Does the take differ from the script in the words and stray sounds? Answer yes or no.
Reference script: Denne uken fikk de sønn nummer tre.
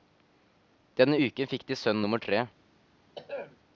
yes